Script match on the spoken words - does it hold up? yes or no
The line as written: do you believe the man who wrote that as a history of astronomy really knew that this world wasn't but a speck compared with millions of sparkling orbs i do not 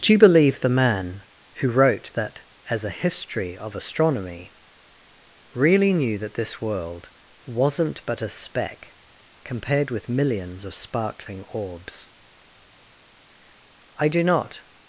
yes